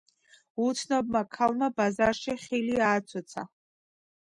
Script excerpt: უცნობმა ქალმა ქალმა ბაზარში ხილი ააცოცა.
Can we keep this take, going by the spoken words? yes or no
no